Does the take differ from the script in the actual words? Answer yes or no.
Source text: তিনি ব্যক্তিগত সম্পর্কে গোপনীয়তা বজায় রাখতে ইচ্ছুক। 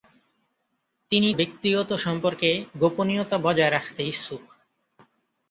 no